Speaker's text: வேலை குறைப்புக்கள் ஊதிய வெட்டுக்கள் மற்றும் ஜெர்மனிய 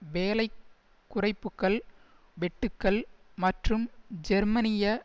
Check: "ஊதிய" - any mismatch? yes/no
yes